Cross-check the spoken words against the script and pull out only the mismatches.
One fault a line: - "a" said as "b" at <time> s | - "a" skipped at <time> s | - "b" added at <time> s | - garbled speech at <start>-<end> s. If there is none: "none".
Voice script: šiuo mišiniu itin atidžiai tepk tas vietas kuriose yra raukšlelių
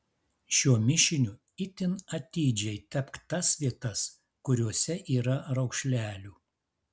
none